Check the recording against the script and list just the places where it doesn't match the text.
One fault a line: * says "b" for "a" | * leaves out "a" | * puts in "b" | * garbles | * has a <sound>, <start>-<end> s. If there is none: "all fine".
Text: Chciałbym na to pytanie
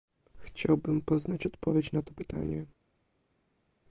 * puts in "poznać odpowiedź"